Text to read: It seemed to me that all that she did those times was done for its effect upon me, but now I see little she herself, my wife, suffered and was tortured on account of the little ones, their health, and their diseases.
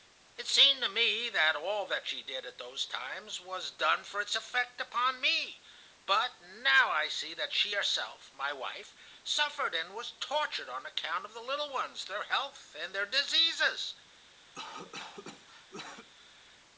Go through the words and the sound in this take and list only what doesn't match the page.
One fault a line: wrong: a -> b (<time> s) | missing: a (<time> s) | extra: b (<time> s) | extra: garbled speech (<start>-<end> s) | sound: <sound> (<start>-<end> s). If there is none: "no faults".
extra: at (2.4 s)
wrong: little -> that (7.3 s)
sound: cough (14.5-16.1 s)